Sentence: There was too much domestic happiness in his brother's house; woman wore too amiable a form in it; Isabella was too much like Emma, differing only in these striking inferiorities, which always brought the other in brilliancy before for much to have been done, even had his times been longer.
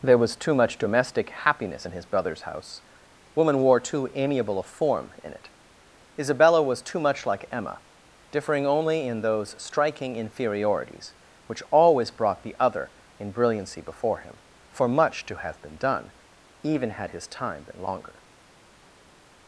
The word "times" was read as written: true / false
false